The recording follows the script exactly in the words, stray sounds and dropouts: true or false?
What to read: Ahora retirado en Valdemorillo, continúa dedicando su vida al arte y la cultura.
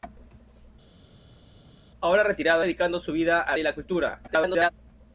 false